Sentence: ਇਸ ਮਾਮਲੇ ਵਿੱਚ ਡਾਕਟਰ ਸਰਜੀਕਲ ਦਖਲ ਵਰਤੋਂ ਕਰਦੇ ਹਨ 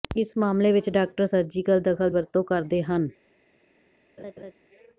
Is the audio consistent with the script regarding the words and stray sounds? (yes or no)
no